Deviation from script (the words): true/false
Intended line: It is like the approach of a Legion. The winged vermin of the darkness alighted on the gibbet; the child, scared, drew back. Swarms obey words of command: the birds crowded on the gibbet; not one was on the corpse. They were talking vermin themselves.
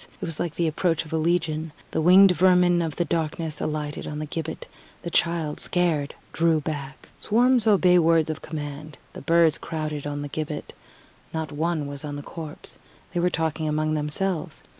true